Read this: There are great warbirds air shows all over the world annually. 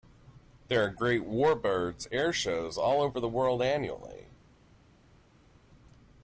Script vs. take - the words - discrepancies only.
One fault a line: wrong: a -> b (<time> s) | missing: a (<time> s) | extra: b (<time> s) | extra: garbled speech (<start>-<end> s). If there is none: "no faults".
no faults